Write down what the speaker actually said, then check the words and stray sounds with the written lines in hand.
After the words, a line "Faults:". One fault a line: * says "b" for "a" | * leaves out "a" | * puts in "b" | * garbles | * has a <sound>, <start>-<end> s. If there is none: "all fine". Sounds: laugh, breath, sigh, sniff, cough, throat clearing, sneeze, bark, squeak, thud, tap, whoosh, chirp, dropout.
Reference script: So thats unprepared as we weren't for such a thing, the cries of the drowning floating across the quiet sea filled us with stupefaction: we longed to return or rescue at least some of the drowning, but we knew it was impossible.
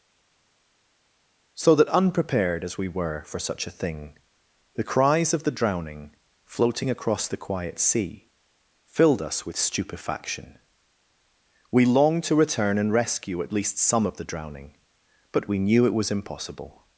So that unprepared as we were for such a thing, the cries of the drowning floating across the quiet sea filled us with stupefaction: we longed to return and rescue at least some of the drowning, but we knew it was impossible.
Faults:
* says "that" for "thats"
* says "were" for "weren't"
* says "and" for "or"